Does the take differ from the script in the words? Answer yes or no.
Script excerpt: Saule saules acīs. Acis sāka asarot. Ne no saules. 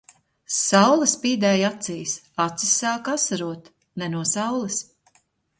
yes